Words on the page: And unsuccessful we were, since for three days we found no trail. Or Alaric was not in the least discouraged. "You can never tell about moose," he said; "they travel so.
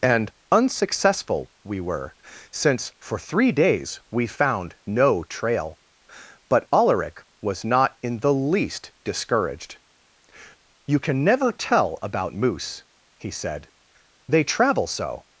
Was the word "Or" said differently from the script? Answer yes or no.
yes